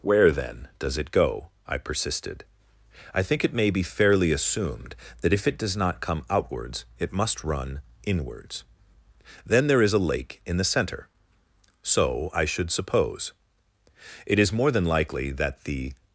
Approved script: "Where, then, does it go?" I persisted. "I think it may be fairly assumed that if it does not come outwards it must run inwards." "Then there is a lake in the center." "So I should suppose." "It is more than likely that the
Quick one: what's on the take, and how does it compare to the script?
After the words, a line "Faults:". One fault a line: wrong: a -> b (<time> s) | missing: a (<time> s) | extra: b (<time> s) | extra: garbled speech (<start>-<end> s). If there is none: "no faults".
"Where, then, does it go?" I persisted. "I think it may be fairly assumed that if it does not come outwards it must run inwards." "Then there is a lake in the center." "So I should suppose." "It is more than likely that the
Faults:
no faults